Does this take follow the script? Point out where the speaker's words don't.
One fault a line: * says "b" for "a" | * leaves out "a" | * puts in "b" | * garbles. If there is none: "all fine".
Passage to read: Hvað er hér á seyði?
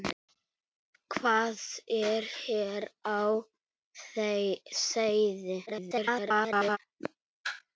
* garbles